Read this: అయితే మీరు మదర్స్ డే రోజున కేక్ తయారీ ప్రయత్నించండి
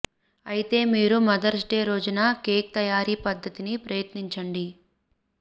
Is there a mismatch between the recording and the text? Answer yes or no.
yes